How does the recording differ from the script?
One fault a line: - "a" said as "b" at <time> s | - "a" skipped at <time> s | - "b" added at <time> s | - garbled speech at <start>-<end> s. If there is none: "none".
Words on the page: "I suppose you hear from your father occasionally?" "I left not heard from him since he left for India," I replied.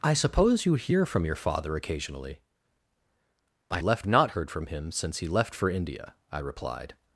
none